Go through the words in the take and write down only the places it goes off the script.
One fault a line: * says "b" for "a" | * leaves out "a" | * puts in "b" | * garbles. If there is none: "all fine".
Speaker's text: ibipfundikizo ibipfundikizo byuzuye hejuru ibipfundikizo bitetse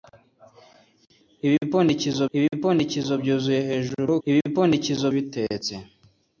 all fine